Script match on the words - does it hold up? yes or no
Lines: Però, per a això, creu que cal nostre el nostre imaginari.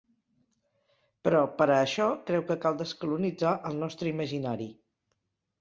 no